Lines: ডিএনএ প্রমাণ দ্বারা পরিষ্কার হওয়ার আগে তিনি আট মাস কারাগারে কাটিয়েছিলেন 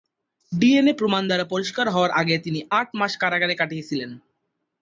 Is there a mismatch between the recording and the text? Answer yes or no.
no